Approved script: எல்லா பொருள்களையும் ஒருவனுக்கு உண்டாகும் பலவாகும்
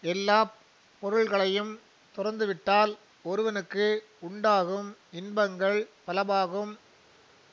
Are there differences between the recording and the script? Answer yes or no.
yes